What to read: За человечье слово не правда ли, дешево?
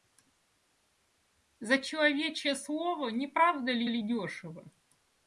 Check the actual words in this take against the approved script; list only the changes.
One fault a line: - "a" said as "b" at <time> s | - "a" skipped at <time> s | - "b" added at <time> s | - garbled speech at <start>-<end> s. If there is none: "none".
- "ли" added at 3.8 s